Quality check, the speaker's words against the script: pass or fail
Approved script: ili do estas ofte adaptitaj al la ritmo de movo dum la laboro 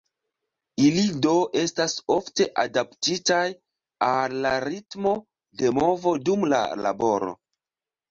pass